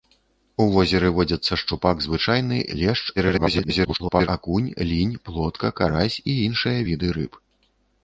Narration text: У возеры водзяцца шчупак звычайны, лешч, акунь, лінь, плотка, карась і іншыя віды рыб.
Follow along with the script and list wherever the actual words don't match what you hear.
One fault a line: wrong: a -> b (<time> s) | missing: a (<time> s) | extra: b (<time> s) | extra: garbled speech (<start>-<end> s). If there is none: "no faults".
extra: garbled speech (3.2-4.3 s)